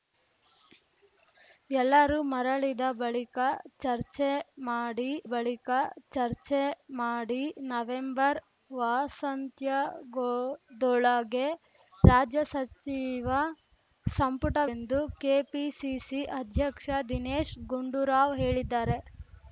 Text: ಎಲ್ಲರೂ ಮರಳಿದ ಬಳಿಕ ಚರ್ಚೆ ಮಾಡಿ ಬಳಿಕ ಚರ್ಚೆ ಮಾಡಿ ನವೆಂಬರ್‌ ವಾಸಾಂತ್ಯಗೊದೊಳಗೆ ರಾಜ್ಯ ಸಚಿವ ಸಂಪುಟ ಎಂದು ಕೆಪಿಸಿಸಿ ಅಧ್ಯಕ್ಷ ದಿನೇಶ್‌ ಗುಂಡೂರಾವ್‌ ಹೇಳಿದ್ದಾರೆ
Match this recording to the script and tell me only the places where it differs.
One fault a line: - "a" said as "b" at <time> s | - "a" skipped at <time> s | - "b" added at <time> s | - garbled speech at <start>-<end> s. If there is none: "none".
none